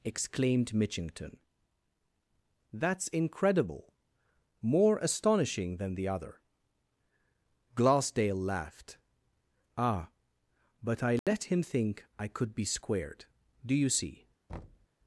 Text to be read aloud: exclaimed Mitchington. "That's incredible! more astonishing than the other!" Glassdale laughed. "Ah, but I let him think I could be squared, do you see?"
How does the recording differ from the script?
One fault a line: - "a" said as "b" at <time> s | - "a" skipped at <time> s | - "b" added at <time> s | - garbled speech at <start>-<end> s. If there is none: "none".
none